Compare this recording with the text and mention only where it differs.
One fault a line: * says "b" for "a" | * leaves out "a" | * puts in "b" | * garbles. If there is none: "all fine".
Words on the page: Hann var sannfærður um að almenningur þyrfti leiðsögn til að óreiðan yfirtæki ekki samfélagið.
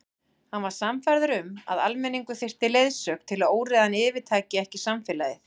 all fine